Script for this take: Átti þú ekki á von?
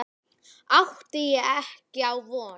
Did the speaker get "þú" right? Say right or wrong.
wrong